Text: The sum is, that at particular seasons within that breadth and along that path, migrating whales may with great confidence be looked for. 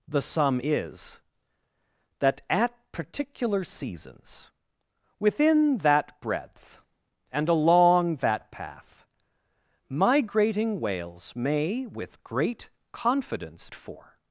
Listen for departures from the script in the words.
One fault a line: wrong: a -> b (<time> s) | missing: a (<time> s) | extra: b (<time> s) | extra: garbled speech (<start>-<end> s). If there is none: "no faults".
missing: be looked (13.7 s)